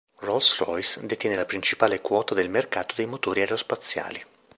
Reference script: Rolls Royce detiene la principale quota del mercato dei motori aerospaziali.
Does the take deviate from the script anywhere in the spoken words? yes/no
no